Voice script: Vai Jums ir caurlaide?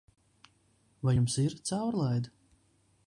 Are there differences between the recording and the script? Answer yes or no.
no